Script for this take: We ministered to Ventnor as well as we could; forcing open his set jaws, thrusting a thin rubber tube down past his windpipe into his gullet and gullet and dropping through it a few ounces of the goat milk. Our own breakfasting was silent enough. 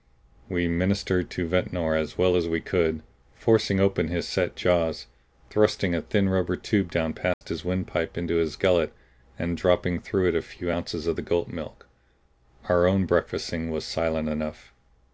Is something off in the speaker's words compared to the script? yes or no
yes